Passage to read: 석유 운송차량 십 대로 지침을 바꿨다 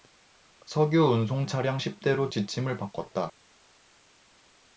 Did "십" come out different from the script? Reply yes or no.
no